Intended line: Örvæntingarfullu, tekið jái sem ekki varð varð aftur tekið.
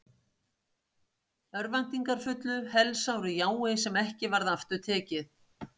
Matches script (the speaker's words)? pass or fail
fail